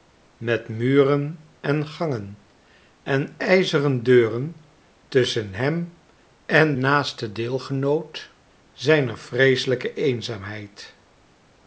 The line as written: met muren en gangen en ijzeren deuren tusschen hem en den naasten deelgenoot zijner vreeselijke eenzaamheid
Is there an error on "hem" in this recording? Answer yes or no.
no